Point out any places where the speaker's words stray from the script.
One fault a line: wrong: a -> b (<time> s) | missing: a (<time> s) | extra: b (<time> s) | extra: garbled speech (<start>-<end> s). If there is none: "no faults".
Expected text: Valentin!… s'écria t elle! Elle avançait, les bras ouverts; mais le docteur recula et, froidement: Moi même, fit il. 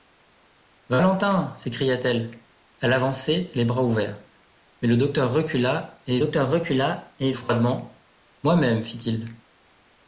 extra: docteur recula et (6.2 s)